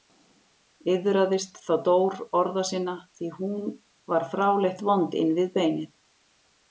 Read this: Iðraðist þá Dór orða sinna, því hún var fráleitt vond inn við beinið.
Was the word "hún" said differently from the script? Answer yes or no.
no